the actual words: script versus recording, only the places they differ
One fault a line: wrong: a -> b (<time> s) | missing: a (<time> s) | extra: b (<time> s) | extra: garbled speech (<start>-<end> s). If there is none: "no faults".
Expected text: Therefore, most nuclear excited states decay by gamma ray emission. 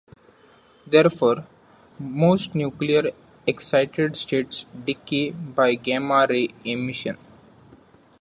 no faults